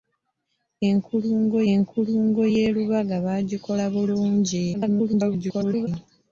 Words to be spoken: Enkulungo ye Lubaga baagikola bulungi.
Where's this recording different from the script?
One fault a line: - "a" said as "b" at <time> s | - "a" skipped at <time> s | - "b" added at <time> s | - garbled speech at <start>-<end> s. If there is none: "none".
- "enkulungo" added at 1.7 s
- garbled speech at 4.7-5.9 s